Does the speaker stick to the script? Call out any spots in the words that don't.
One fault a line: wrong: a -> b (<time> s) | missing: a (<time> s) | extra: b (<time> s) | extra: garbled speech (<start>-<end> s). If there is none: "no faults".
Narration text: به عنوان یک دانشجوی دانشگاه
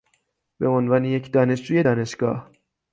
no faults